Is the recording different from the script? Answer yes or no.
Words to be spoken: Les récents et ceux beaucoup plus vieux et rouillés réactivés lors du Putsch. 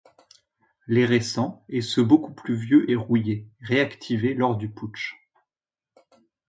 no